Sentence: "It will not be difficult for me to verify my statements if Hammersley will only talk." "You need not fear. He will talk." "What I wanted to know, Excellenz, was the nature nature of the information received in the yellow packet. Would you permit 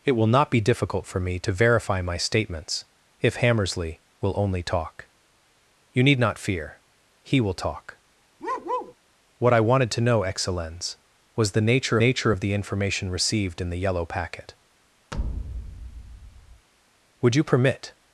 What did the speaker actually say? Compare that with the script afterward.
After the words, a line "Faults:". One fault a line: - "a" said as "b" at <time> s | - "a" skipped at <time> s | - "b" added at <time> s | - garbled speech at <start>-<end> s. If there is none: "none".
"It will not be difficult for me to verify my statements if Hammersley will only talk." "You need not fear. He will talk." "What I wanted to know, Excellenz, was the nature nature of the information received in the yellow packet. Would you permit
Faults:
none